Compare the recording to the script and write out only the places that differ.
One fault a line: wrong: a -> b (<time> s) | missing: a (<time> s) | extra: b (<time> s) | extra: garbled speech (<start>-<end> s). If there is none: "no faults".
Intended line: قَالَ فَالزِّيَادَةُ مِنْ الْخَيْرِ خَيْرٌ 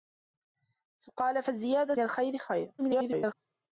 missing: مِنْ (2.0 s)
extra: garbled speech (2.8-3.3 s)